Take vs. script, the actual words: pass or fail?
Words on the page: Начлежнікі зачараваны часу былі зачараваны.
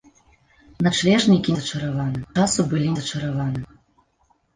pass